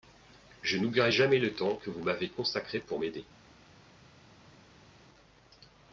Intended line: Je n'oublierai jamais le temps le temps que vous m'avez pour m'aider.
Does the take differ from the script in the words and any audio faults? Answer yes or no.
yes